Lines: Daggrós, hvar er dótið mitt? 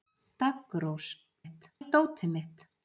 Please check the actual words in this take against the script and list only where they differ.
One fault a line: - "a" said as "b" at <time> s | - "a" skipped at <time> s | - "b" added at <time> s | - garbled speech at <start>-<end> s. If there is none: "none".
- "hvar" said as "mitt" at 1.4 s